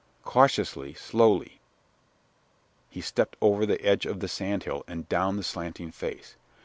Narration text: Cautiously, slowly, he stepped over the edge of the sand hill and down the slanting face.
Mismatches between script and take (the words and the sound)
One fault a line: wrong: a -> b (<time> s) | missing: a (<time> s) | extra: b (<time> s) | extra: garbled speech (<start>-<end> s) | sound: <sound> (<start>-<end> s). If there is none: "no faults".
no faults